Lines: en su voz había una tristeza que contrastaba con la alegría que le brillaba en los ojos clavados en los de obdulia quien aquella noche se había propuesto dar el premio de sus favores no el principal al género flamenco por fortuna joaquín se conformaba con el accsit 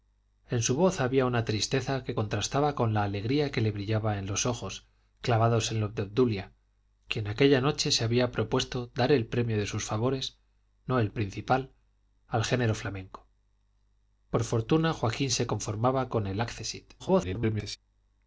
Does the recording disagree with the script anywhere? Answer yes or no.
yes